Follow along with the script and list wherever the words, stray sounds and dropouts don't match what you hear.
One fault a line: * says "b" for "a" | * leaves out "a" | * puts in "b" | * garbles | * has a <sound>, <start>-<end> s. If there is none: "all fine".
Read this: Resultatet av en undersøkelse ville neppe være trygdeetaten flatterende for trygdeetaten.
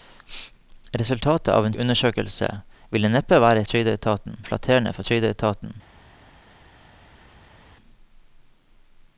all fine